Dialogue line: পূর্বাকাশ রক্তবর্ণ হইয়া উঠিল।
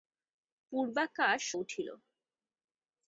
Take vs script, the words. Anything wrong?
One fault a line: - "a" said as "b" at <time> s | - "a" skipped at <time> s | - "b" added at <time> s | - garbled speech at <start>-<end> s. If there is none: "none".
- "রক্তবর্ণ হইয়া" skipped at 1.4 s